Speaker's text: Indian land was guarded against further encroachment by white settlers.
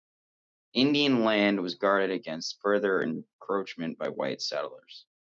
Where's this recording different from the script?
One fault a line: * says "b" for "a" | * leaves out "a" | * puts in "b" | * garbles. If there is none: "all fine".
all fine